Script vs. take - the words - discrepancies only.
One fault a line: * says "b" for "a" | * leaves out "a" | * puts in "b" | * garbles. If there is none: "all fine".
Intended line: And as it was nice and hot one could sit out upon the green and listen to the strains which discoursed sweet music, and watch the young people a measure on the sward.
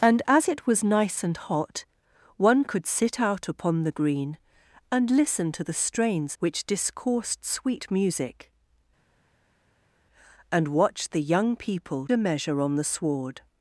all fine